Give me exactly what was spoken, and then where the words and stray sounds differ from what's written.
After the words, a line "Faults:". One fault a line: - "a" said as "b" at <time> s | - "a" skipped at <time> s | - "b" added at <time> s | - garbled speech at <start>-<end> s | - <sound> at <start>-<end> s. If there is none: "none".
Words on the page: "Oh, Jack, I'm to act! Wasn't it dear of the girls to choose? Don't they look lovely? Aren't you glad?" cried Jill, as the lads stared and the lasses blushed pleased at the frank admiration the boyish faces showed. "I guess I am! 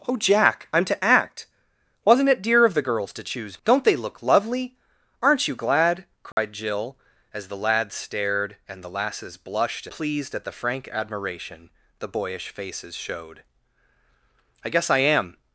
"Oh, Jack, I'm to act! Wasn't it dear of the girls to choose? Don't they look lovely? Aren't you glad?" cried Jill, as the lads stared and the lasses blushed pleased at the frank admiration the boyish faces showed. "I guess I am!
Faults:
- dropout at 6.3-6.4 s